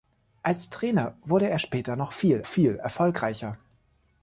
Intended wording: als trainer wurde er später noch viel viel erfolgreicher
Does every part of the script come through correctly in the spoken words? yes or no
yes